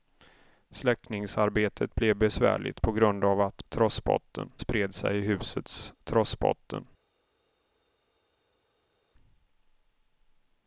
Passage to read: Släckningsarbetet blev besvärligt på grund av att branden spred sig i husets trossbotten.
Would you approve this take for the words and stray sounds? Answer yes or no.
no